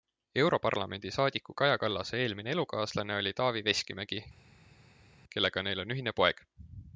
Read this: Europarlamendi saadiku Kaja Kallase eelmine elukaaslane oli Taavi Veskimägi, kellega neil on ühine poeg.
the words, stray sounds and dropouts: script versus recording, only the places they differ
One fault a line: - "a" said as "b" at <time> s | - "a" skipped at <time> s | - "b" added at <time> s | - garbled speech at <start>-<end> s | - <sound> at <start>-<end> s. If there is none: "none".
none